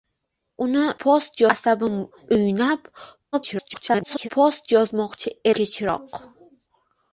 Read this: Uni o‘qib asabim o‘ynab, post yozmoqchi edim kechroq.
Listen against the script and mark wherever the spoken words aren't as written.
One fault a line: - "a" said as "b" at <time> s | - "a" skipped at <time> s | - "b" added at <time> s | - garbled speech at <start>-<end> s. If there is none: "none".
- "o‘qib" said as "post" at 1.1 s
- garbled speech at 3.3-4.3 s
- "edim" skipped at 5.4 s